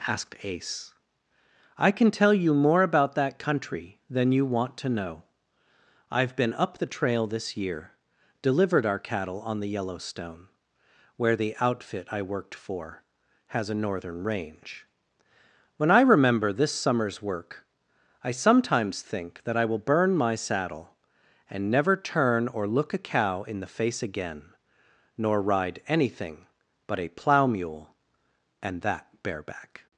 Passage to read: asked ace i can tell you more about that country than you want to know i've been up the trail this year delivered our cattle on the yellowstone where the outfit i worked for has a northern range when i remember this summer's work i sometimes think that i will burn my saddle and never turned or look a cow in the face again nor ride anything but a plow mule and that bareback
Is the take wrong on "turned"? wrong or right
wrong